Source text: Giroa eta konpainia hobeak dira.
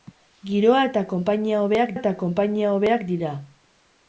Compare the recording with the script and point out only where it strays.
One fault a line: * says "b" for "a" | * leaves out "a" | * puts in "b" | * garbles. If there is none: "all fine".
* puts in "eta konpainia hobeak"